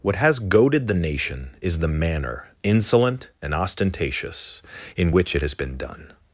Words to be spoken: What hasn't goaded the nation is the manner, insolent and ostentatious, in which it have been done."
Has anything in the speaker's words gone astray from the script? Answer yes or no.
yes